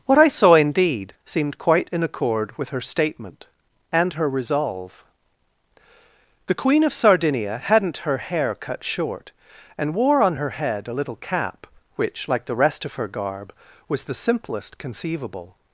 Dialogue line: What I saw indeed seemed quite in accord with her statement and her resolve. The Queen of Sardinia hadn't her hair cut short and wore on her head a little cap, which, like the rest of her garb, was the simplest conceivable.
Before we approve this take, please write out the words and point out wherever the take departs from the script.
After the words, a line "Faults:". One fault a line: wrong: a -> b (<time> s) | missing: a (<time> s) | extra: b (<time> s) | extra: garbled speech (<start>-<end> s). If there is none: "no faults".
What I saw indeed seemed quite in accord with her statement and her resolve. The Queen of Sardinia hadn't her hair cut short and wore on her head a little cap, which, like the rest of her garb, was the simplest conceivable.
Faults:
no faults